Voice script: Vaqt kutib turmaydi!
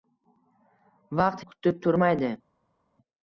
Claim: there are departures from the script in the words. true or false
false